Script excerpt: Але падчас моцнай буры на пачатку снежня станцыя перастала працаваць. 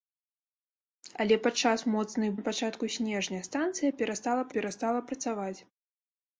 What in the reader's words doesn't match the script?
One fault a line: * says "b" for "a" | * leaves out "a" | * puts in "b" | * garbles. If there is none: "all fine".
* leaves out "буры"
* puts in "перастала"